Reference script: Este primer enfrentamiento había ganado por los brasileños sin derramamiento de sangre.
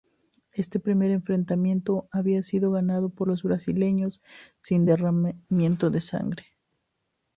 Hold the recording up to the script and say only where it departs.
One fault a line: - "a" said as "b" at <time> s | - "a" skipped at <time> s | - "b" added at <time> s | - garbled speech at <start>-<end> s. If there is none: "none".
- "sido" added at 2.4 s